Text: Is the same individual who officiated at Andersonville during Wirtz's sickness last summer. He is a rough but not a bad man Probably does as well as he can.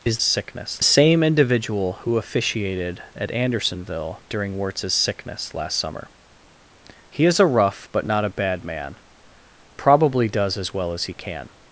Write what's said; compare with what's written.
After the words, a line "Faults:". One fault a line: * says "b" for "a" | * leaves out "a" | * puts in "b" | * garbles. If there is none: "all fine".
Is sickness same individual who officiated at Andersonville during Wirtz's sickness last summer. He is a rough but not a bad man Probably does as well as he can.
Faults:
* says "sickness" for "the"